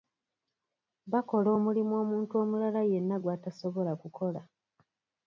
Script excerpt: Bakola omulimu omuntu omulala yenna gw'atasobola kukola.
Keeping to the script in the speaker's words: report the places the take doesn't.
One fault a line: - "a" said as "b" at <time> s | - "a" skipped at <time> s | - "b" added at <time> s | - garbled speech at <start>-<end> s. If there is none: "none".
none